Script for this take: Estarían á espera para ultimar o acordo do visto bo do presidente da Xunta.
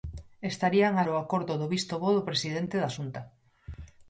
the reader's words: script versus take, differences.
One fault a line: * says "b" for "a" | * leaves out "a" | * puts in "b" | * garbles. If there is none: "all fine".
* leaves out "espera para ultimar"